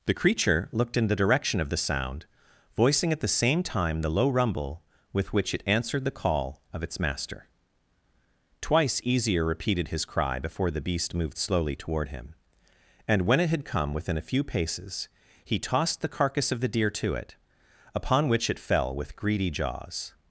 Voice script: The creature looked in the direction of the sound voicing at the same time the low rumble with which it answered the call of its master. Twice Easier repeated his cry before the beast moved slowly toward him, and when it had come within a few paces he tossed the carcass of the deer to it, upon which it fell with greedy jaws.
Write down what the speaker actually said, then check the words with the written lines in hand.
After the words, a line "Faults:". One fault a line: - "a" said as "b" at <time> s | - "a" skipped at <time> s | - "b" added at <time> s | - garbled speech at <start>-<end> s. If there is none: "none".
The creature looked in the direction of the sound voicing at the same time the low rumble with which it answered the call of its master. Twice Easier repeated his cry before the beast moved slowly toward him, and when it had come within a few paces he tossed the carcass of the deer to it, upon which it fell with greedy jaws.
Faults:
none